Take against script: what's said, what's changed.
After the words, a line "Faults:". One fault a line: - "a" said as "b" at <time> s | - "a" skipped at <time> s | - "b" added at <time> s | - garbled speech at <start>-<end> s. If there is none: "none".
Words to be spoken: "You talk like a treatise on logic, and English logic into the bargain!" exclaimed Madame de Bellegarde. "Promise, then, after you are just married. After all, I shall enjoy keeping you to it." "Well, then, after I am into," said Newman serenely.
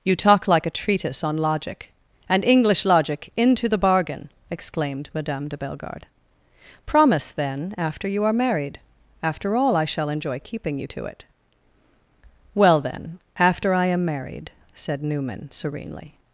"You talk like a treatise on logic, and English logic into the bargain!" exclaimed Madame de Bellegarde. "Promise, then, after you are married. After all, I shall enjoy keeping you to it." "Well, then, after I am married," said Newman serenely.
Faults:
- "just" skipped at 8.3 s
- "into" said as "married" at 14.1 s